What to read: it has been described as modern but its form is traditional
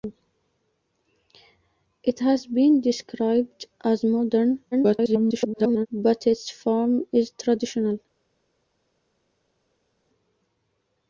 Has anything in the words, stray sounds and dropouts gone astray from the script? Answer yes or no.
yes